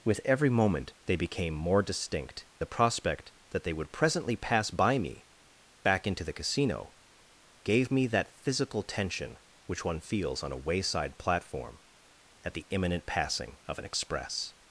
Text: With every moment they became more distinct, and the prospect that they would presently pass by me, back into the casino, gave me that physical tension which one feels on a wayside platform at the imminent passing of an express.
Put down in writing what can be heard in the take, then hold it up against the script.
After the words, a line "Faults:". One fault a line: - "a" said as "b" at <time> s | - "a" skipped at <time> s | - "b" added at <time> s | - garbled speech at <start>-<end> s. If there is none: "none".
With every moment they became more distinct, the prospect that they would presently pass by me, back into the casino, gave me that physical tension which one feels on a wayside platform at the imminent passing of an express.
Faults:
- "and" skipped at 2.5 s